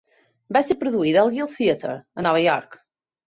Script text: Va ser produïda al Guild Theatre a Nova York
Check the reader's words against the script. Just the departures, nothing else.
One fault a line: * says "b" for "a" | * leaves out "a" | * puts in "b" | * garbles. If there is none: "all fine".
all fine